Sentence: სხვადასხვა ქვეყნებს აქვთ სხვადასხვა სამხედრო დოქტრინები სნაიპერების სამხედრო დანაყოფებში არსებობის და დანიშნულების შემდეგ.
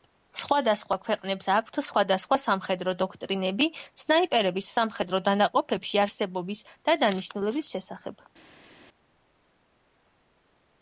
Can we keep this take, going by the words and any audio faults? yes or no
no